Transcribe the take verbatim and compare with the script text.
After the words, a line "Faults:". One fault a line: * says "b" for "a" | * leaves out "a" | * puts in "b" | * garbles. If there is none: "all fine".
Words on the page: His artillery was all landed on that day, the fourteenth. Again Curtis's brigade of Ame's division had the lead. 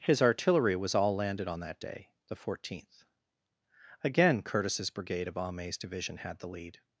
His artillery was all landed on that day, the fourteenth. Again Curtis's brigade of Ame's division had the lead.
Faults:
all fine